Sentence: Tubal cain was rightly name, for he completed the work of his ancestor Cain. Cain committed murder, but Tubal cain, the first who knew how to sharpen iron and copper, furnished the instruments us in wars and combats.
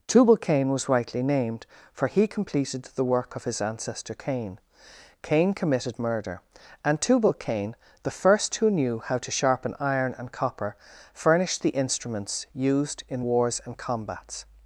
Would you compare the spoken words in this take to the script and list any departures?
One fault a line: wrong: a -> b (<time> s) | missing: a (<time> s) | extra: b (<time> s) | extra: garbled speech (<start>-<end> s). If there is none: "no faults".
wrong: name -> named (1.2 s)
wrong: but -> and (6.8 s)
wrong: us -> used (12.5 s)